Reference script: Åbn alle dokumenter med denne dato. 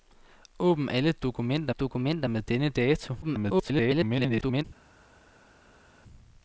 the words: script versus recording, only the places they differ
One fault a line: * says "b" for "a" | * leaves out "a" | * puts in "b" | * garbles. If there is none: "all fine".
* puts in "dokumenter"
* garbles